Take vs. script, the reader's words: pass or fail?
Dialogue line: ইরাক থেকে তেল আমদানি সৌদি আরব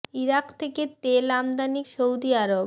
pass